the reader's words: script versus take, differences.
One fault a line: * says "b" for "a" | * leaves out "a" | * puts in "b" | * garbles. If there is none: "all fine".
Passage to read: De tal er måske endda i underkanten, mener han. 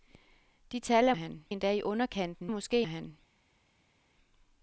* says "han" for "måske"
* says "måske" for "mener"